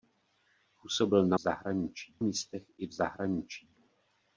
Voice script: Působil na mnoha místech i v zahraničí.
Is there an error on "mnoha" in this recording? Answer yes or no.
yes